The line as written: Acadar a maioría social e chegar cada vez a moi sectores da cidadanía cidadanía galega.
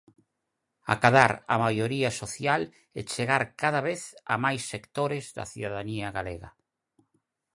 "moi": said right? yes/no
no